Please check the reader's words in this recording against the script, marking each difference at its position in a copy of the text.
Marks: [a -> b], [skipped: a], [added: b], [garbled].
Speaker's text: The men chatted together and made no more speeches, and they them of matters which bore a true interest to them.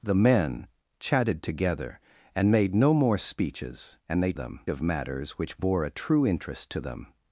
The men chatted together and made no more speeches, and they them of matters which bore a true interest to them.